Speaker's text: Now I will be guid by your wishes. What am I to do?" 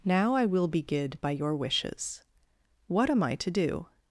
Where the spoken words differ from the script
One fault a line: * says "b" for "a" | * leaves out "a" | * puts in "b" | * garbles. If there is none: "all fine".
all fine